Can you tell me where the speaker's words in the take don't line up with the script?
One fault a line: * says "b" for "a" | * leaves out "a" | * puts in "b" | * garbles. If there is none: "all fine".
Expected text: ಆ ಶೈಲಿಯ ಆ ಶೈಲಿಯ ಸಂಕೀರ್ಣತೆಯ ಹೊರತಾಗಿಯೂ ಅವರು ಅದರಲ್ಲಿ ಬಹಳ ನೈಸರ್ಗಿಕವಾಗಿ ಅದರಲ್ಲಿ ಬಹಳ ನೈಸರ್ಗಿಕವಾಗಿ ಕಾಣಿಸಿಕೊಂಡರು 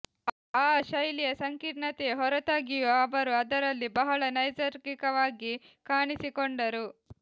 * leaves out "ಆ ಶೈಲಿಯ"
* leaves out "ಅದರಲ್ಲಿ ಬಹಳ ನೈಸರ್ಗಿಕವಾಗಿ"